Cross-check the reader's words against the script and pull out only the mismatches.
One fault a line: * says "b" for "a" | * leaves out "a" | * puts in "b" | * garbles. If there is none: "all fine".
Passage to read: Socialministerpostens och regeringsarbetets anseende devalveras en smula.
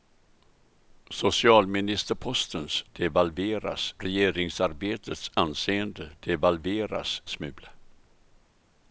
* says "devalveras" for "och"
* leaves out "en"